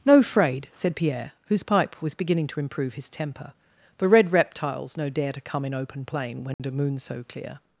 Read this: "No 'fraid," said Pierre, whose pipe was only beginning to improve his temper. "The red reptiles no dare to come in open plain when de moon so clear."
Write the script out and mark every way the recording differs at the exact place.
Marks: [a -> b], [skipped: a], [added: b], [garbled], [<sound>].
"No 'fraid," said Pierre, whose pipe was [skipped: only] beginning to improve his temper. "The red reptiles no dare to come in open plain when [dropout] de moon so clear."